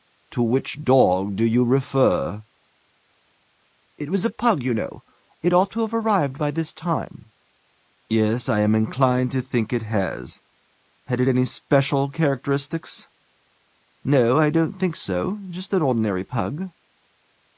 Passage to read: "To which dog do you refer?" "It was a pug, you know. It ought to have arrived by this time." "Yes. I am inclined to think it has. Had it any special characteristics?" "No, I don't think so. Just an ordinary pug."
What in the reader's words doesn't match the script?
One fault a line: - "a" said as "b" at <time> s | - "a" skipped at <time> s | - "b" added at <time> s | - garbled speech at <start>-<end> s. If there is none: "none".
none